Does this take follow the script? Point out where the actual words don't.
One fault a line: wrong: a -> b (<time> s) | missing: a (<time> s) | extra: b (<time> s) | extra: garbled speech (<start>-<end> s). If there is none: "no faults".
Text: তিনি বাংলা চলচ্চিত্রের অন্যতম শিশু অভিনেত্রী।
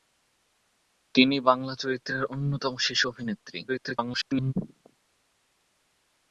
extra: garbled speech (3.7-4.5 s)